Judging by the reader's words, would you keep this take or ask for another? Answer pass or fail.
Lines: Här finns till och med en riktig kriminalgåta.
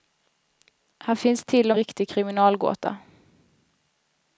fail